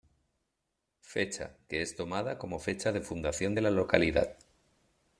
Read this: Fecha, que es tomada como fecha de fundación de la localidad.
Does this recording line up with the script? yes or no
yes